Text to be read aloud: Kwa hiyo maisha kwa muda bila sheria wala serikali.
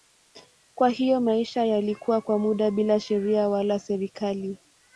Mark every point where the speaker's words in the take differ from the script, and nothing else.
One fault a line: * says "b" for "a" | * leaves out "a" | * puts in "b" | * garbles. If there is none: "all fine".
* puts in "yalikuwa"